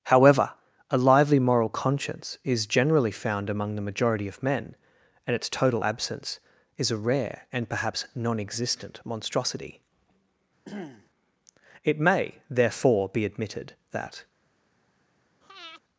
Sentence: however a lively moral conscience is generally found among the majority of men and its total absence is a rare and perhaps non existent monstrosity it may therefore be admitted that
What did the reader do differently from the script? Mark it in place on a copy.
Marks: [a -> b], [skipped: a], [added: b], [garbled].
however a lively moral conscience is generally found among the majority of men and its total absence is a rare and perhaps non existent monstrosity it may therefore be admitted that